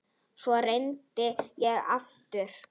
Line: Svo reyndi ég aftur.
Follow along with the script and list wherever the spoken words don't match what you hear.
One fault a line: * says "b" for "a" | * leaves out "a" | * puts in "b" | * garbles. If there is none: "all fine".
all fine